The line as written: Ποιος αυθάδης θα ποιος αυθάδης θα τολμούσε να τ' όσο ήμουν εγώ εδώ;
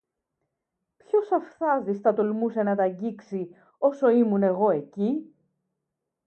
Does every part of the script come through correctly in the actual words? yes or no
no